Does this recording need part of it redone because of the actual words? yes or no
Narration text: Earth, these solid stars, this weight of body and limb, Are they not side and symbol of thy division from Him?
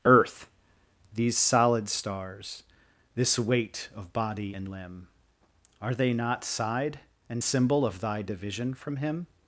no